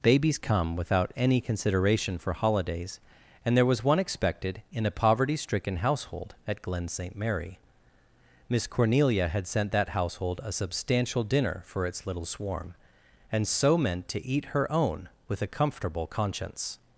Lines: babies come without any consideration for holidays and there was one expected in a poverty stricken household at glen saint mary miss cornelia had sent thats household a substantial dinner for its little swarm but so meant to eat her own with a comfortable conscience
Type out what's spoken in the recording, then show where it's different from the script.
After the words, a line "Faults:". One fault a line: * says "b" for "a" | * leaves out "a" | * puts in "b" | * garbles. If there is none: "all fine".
babies come without any consideration for holidays and there was one expected in a poverty stricken household at glen saint mary miss cornelia had sent that household a substantial dinner for its little swarm and so meant to eat her own with a comfortable conscience
Faults:
* says "that" for "thats"
* says "and" for "but"